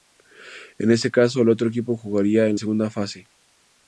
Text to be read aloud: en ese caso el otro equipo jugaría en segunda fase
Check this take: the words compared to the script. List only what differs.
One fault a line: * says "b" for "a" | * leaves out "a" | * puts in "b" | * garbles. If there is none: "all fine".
all fine